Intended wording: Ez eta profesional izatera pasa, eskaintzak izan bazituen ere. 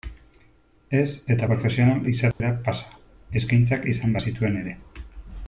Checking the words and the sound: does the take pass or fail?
fail